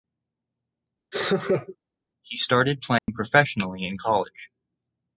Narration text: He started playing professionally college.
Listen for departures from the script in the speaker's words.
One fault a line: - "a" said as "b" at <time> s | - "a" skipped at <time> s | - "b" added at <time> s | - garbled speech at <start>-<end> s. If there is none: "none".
- "in" added at 3.9 s